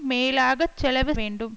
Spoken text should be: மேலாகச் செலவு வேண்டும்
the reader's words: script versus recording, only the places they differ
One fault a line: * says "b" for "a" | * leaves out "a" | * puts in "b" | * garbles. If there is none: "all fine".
all fine